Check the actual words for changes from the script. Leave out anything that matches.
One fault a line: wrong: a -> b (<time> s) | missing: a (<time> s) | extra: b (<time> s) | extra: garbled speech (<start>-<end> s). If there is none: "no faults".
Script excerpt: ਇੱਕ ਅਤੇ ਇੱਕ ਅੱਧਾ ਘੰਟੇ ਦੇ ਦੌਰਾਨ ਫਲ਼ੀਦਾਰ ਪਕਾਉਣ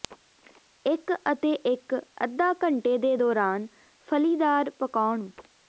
no faults